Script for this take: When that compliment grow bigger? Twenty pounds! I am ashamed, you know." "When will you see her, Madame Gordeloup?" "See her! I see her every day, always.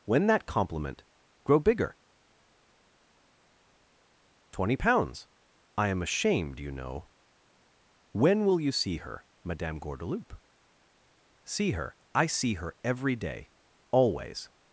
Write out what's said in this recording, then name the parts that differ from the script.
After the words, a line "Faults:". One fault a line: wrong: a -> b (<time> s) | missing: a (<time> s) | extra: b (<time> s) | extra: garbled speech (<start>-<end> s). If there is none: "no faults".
When that compliment grow bigger? Twenty pounds! I am ashamed, you know." "When will you see her, Madame Gordeloup?" "See her! I see her every day, always.
Faults:
no faults